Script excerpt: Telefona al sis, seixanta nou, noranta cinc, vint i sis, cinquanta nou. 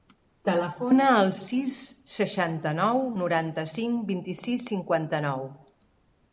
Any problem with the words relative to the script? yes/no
no